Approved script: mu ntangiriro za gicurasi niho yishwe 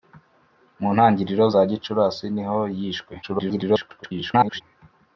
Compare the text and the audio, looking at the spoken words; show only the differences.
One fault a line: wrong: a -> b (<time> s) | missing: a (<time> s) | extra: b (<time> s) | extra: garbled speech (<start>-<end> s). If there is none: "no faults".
extra: garbled speech (3.2-4.6 s)